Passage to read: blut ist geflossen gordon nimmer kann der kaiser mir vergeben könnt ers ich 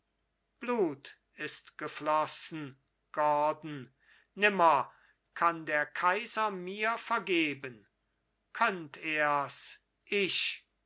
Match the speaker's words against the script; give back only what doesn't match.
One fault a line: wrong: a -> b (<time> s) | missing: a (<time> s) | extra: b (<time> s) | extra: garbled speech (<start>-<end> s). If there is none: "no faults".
no faults